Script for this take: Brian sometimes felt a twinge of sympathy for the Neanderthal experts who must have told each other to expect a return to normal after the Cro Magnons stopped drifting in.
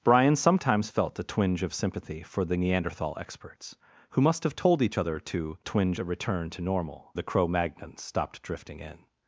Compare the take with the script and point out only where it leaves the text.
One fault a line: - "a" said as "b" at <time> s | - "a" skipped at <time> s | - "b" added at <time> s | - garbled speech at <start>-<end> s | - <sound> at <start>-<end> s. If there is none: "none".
- "expect" said as "twinge" at 5.6 s
- "after" skipped at 7.1 s